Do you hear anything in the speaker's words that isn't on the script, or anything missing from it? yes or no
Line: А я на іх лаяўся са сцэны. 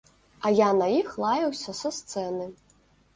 no